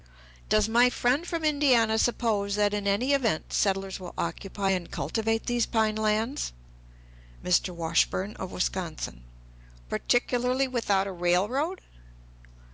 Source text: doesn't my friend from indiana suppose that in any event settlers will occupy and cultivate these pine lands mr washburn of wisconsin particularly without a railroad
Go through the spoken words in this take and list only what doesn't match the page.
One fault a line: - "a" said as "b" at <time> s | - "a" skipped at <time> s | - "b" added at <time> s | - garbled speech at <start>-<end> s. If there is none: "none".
- "doesn't" said as "does" at 0.5 s